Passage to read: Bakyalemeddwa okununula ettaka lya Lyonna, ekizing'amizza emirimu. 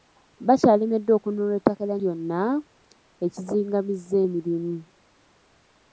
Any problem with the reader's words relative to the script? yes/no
no